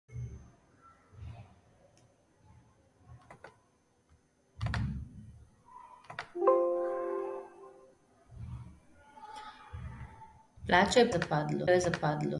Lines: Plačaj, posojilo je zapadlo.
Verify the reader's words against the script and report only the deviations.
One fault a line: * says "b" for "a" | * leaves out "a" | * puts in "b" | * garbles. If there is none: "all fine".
* says "zapadlo" for "posojilo"